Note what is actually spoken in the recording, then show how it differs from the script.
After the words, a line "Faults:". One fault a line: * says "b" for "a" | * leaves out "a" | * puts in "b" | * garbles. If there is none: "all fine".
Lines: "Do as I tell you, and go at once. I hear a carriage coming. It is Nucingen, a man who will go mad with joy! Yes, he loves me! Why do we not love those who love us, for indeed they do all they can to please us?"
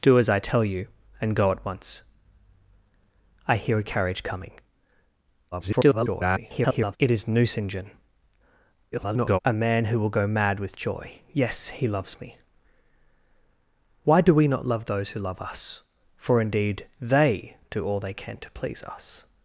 "Do as I tell you, and go at once. I hear a carriage coming. [garbled] It is Nucingen, [garbled] a man who will go mad with joy! Yes, he loves me! Why do we not love those who love us, for indeed they do all they can to please us?"
Faults:
* garbles
* garbles